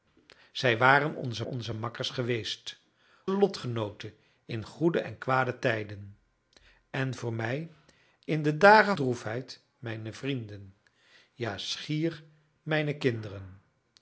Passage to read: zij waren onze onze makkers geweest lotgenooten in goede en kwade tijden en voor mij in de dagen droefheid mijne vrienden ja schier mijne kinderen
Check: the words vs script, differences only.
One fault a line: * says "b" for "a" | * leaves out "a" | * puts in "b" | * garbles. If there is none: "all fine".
all fine